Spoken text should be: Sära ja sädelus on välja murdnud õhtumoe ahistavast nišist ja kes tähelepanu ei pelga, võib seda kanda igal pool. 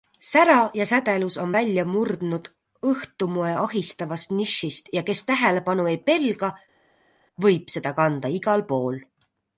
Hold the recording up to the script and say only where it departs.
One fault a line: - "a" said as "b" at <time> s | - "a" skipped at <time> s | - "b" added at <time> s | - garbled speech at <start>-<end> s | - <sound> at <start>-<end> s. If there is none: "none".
none